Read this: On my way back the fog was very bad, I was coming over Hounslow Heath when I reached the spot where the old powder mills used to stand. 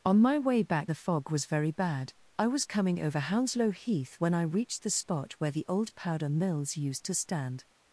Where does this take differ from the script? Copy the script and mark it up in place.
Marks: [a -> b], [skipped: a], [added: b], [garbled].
On my way back the fog was very bad, I was coming over Hounslow Heath when I reached the spot where the old powder mills used to stand.